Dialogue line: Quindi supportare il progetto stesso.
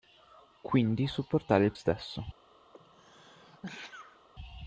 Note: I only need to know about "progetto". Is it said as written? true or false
false